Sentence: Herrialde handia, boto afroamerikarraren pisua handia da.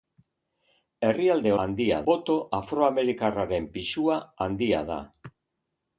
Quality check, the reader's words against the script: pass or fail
pass